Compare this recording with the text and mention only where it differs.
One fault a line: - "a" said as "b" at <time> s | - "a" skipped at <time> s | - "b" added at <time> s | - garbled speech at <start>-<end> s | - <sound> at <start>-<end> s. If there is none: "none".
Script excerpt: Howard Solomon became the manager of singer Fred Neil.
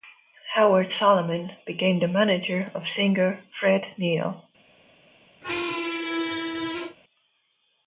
- squeak at 5.4-7.0 s